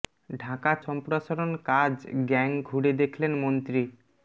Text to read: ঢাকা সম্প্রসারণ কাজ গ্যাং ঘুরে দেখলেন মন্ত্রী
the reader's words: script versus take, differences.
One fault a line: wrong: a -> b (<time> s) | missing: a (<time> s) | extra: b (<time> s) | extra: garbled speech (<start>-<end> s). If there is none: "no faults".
no faults